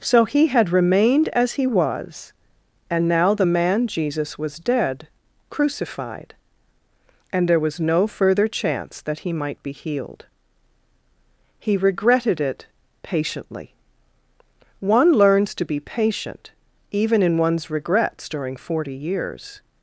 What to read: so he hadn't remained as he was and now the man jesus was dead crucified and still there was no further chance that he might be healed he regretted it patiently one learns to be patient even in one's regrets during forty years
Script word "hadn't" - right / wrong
wrong